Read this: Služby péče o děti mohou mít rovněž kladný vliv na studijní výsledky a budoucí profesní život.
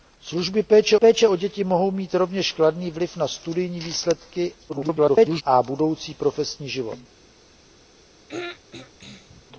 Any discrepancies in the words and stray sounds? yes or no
yes